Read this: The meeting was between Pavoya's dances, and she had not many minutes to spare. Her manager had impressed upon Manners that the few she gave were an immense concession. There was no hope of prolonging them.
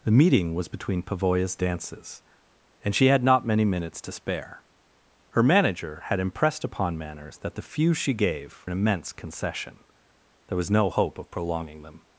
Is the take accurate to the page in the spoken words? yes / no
no